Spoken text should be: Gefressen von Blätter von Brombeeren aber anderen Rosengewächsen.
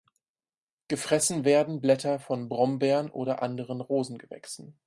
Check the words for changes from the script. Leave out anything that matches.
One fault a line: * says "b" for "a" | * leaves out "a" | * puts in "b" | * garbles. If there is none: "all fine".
* says "werden" for "von"
* says "oder" for "aber"